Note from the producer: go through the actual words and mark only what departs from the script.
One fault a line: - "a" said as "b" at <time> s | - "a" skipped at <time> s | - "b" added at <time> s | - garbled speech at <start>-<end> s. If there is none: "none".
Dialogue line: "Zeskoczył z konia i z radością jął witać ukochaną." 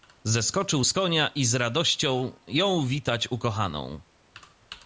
none